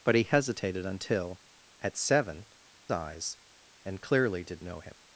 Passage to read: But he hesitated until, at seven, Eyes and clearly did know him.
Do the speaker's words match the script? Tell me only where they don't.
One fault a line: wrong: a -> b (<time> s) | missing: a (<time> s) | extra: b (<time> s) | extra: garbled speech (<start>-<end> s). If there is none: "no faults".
no faults